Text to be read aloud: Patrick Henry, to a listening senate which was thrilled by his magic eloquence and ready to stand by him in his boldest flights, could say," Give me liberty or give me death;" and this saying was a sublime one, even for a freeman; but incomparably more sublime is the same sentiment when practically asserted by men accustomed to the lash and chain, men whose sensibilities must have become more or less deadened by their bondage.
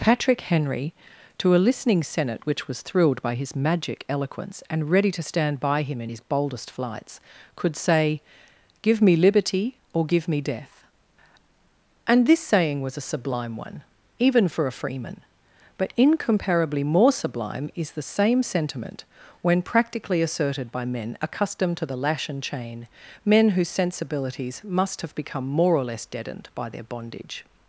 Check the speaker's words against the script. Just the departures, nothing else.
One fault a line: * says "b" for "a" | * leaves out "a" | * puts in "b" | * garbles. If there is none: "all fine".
all fine